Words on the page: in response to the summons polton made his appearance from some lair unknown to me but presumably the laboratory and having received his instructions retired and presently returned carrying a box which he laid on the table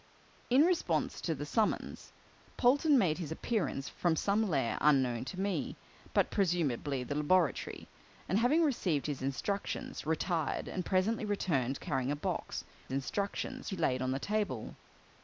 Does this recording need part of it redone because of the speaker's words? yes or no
yes